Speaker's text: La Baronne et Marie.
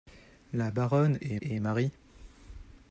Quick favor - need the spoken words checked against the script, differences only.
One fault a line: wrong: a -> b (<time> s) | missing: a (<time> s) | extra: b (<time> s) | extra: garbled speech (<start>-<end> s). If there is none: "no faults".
extra: et (1.4 s)